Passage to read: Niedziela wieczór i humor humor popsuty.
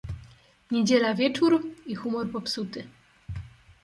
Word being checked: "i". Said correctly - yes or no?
yes